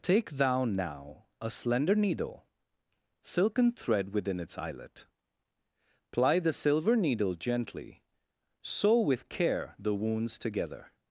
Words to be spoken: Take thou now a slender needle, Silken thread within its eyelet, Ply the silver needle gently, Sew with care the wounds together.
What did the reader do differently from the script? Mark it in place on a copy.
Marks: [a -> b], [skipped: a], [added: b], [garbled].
Take thou now a slender needle, Silken thread within its eyelet, Ply the silver needle gently, Sew with care the wounds together.